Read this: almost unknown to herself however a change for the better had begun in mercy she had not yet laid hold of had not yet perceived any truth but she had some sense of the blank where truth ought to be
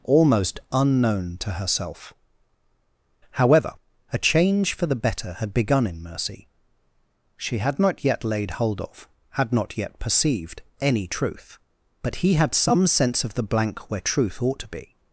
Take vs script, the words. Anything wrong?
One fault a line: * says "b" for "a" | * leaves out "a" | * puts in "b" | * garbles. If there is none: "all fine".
* says "he" for "she"